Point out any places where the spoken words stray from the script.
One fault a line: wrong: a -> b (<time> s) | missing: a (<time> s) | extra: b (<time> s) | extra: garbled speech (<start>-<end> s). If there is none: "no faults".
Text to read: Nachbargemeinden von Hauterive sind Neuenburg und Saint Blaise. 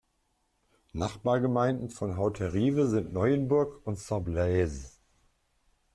no faults